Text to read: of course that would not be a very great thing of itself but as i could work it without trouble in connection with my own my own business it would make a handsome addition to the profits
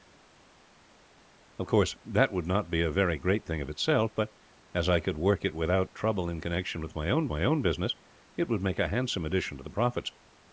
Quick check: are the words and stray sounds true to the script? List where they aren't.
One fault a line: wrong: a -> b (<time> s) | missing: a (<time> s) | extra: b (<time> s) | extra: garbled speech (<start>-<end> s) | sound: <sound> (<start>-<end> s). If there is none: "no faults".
no faults